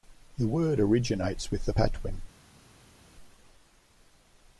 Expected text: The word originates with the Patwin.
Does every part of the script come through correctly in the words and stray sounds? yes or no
yes